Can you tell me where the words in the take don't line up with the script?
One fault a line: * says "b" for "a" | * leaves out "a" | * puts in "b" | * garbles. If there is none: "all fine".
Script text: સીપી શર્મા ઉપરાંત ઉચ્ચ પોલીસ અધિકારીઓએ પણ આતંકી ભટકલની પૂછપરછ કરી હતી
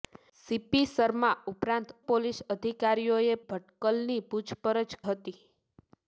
* leaves out "ઉચ્ચ"
* leaves out "પણ આતંકી"
* leaves out "કરી"